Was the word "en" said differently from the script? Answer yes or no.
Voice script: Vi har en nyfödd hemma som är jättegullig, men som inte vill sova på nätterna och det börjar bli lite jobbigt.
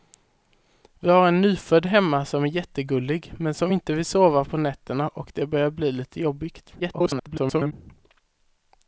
no